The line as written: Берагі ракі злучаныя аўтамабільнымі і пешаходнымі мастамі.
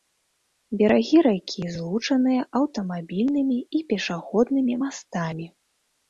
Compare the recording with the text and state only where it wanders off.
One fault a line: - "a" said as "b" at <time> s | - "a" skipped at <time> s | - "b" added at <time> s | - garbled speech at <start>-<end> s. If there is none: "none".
none